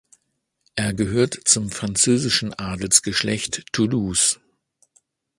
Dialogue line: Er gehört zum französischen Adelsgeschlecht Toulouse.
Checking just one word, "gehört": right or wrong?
right